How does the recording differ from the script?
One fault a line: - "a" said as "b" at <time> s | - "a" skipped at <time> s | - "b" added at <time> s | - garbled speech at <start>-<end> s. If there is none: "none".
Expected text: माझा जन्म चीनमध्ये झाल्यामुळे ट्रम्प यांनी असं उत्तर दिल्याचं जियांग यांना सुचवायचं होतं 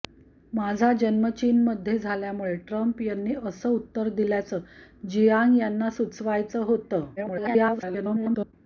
- garbled speech at 7.2-8.5 s